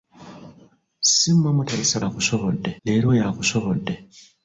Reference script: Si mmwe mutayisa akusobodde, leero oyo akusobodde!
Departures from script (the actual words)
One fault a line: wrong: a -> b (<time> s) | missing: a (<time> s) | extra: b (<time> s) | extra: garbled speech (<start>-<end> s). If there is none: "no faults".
no faults